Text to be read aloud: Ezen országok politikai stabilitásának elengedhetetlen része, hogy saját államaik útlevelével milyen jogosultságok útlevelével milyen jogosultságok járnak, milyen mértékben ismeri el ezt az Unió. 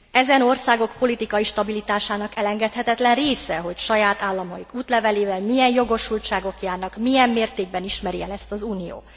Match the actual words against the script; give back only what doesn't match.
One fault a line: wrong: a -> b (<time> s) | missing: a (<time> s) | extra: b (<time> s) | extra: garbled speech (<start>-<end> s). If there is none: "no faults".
missing: útlevelével milyen jogosultságok (6.6 s)